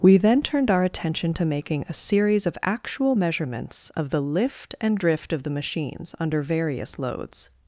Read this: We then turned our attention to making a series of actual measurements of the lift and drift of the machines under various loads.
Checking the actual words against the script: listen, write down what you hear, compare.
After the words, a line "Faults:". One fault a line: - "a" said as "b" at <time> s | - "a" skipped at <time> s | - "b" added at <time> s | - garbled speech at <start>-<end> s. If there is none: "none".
We then turned our attention to making a series of actual measurements of the lift and drift of the machines under various loads.
Faults:
none